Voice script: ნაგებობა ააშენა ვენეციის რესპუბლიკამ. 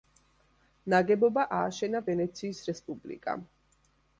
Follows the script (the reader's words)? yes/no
yes